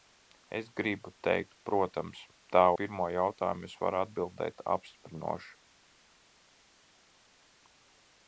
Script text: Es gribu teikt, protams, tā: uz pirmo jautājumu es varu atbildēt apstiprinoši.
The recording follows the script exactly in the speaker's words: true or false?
false